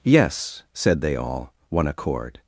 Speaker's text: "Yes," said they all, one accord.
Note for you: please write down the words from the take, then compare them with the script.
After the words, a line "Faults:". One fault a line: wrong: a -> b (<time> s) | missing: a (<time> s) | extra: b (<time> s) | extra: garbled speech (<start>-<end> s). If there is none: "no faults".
"Yes," said they all, one accord.
Faults:
no faults